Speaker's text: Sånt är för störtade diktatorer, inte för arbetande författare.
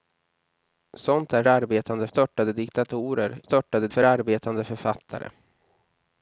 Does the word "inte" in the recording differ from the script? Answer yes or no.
yes